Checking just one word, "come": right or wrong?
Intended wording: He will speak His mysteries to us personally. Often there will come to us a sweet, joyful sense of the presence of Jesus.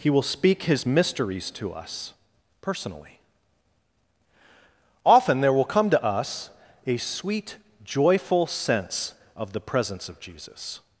right